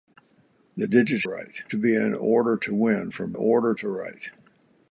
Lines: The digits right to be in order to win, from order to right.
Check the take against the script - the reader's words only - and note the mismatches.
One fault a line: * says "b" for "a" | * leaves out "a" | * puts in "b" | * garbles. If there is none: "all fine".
all fine